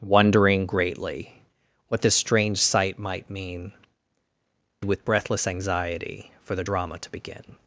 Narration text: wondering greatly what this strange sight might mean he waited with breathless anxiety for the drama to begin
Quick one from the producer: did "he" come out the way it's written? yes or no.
no